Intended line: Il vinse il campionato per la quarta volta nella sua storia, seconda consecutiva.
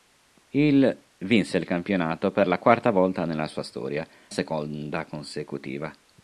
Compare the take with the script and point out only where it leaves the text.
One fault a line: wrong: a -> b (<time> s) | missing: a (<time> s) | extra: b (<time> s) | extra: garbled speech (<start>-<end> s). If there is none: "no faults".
no faults